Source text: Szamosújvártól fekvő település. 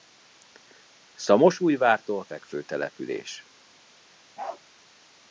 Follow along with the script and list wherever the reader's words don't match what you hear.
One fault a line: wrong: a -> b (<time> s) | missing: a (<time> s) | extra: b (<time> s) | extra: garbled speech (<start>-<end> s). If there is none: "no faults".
no faults